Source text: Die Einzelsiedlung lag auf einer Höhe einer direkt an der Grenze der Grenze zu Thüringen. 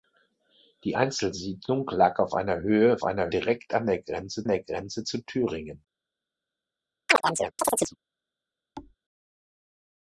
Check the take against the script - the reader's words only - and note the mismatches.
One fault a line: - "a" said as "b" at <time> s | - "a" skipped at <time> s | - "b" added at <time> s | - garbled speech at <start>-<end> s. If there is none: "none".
none